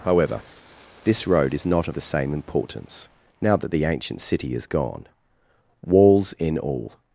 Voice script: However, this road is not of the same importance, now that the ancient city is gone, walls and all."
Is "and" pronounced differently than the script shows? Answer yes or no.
yes